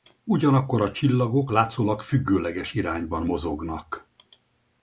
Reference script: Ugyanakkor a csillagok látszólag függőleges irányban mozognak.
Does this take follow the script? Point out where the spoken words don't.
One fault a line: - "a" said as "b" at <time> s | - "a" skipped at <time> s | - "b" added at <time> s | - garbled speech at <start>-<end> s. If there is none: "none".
none